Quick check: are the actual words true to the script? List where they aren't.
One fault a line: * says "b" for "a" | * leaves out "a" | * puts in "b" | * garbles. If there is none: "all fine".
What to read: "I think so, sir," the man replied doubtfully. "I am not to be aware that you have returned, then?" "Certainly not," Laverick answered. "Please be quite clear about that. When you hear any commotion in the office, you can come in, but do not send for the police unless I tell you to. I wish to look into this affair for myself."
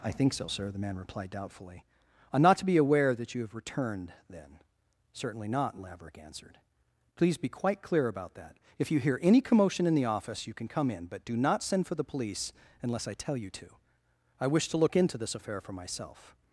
* says "If" for "When"